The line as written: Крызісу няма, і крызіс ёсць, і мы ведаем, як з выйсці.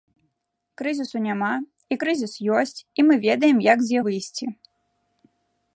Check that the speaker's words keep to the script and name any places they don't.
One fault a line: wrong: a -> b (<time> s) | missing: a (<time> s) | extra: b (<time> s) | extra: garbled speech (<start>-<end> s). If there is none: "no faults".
no faults